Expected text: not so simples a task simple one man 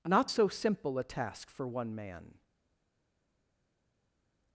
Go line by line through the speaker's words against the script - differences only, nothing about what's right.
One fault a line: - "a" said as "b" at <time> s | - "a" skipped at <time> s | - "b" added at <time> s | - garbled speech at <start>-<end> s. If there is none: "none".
- "simples" said as "simple" at 0.5 s
- "simple" said as "for" at 1.5 s